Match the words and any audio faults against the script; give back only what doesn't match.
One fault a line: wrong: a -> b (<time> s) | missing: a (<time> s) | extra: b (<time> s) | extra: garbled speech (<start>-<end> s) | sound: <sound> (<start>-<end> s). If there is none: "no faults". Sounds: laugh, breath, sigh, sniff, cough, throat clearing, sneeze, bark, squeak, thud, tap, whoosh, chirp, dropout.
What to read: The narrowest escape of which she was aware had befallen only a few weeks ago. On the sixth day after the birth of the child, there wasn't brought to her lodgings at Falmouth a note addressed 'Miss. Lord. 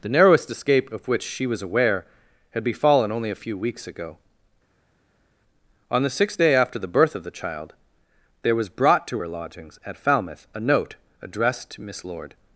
wrong: wasn't -> was (8.5 s)
extra: to (11.7 s)